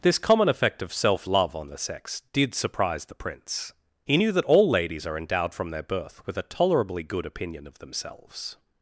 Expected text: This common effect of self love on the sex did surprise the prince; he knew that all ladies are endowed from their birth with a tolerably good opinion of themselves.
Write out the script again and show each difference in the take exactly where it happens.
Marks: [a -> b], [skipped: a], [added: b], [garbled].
This common effect of self love on the sex did surprise the prince; he knew that all ladies are endowed from their birth with a tolerably good opinion of themselves.